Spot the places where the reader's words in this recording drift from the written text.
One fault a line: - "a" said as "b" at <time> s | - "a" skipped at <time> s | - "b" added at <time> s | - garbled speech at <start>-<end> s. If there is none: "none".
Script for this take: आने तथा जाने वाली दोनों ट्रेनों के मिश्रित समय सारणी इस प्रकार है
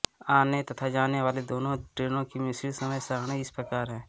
- "के" said as "की" at 2.2 s